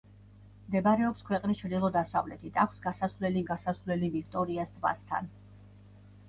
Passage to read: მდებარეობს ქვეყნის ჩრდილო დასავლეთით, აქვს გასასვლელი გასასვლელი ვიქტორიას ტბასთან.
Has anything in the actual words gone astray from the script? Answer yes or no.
no